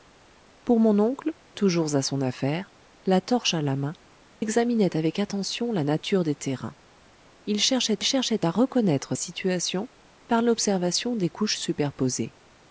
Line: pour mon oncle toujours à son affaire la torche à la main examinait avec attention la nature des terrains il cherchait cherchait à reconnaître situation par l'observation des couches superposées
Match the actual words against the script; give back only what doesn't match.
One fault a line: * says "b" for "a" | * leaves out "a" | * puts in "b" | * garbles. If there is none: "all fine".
all fine